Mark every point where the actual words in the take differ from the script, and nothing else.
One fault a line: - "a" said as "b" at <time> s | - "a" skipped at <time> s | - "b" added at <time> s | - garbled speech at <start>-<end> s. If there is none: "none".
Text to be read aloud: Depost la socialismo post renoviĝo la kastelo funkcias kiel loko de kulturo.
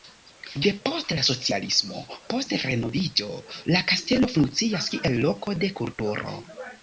none